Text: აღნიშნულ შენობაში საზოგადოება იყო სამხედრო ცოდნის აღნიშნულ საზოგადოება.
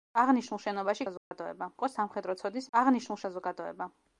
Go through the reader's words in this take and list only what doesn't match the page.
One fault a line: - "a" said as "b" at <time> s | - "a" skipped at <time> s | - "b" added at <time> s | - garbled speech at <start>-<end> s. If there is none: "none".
none